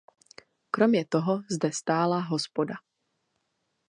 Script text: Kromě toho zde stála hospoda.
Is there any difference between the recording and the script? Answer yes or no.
no